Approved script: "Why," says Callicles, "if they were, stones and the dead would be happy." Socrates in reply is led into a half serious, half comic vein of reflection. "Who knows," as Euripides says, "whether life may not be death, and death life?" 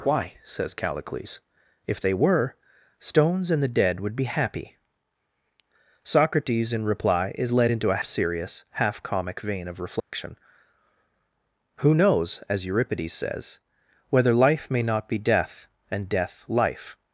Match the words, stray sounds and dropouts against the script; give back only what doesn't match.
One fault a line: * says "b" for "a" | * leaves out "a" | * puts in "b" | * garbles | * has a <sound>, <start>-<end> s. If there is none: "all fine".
* leaves out "half"
* has a dropout, 10.0-10.1 s